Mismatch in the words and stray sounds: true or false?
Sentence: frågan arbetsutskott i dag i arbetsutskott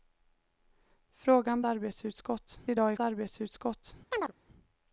true